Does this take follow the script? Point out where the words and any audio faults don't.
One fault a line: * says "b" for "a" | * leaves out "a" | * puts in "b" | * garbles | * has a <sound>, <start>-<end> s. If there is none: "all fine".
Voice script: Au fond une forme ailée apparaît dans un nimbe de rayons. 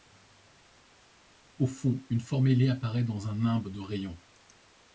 all fine